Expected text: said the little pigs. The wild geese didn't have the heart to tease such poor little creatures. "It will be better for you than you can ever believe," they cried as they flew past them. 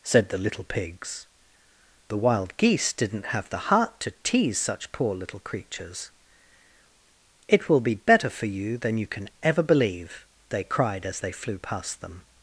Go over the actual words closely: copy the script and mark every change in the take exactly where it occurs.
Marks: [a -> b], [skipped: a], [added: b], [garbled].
said the little pigs. The wild geese didn't have the heart to tease such poor little creatures. "It will be better for you than you can ever believe," they cried as they flew past them.